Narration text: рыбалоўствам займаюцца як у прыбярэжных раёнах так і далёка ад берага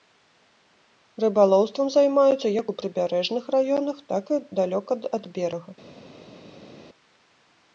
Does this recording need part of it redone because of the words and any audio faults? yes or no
no